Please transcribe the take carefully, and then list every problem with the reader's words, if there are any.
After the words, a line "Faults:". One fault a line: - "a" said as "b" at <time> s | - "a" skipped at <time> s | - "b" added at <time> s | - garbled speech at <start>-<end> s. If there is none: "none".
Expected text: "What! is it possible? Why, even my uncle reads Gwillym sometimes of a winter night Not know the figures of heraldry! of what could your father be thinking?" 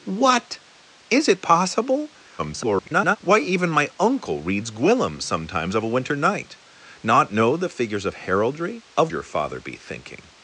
"What! is it possible? [garbled] Why, even my uncle reads Gwillym sometimes of a winter night Not know the figures of heraldry! of your father be thinking?"
Faults:
- garbled speech at 2.4-3.2 s
- "what could" skipped at 9.1 s